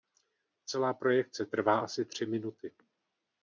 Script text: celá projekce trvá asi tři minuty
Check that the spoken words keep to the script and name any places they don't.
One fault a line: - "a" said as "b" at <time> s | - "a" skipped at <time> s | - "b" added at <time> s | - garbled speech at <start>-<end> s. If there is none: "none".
none